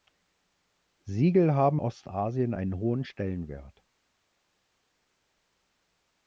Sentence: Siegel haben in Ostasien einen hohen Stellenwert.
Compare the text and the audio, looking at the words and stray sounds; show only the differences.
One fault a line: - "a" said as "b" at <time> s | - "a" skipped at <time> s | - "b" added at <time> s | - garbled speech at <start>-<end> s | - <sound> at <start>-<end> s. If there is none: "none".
- "in" skipped at 1.8 s